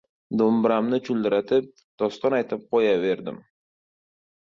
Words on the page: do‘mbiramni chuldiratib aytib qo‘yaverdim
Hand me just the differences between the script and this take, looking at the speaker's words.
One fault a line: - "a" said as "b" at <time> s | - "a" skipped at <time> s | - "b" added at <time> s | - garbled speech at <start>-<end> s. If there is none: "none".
- "doston" added at 2.0 s